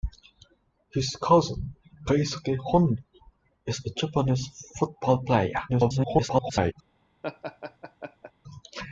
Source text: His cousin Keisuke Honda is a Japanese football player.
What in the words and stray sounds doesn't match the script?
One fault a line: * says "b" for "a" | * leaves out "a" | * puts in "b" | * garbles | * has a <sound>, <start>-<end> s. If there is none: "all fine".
* garbles
* has a laugh, 7.2-8.3 s